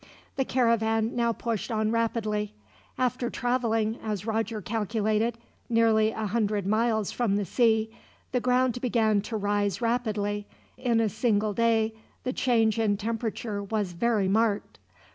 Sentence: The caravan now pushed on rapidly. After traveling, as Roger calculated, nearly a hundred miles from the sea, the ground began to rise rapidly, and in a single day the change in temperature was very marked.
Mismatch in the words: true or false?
true